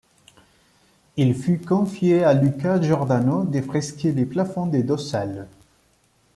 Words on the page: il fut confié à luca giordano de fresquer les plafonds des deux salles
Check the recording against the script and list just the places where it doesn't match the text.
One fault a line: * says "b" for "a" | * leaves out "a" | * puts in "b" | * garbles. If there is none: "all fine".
all fine